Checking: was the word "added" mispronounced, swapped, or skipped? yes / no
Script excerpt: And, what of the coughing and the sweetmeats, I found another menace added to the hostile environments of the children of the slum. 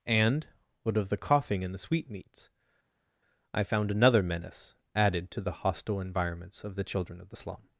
no